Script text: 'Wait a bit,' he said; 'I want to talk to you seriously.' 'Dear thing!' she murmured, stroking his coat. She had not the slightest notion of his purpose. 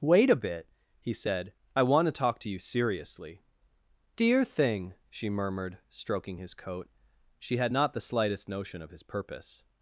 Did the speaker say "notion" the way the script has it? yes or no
yes